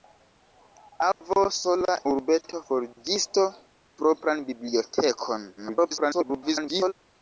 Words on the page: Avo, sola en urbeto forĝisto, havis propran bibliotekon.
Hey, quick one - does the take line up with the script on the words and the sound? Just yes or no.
no